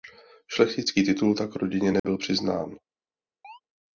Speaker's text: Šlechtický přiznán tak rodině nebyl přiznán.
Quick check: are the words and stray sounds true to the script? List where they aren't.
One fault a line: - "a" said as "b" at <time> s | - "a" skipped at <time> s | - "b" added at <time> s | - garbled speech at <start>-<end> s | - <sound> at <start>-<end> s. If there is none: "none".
- "přiznán" said as "titul" at 1.0 s
- dropout at 2.0-2.0 s
- chirp at 3.4-3.6 s